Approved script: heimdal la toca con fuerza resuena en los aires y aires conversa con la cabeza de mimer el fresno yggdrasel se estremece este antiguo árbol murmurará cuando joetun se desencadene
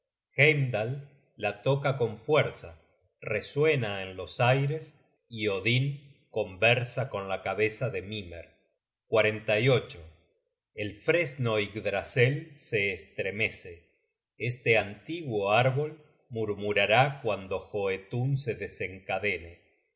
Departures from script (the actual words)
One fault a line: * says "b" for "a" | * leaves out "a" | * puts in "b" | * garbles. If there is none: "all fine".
* says "odin" for "aires"